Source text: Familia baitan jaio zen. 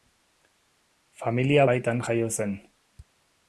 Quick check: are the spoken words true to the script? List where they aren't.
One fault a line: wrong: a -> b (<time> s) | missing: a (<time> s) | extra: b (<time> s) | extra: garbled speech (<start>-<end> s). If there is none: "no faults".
no faults